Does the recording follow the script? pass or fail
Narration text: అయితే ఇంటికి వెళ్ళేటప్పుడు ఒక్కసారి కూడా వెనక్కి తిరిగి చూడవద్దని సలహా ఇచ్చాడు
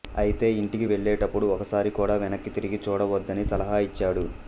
pass